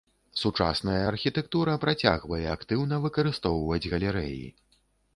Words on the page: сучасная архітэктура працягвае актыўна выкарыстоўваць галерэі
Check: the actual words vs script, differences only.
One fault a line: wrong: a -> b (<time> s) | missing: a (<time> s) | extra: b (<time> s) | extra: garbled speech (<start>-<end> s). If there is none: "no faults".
no faults